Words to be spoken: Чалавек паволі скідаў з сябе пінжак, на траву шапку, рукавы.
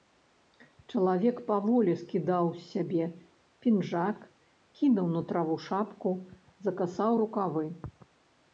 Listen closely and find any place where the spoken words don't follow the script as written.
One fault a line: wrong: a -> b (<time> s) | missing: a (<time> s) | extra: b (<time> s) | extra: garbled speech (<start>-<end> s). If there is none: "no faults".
extra: кінуў (4.8 s)
extra: закасаў (6.7 s)